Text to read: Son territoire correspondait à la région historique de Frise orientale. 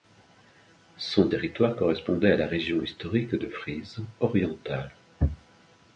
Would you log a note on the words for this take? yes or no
no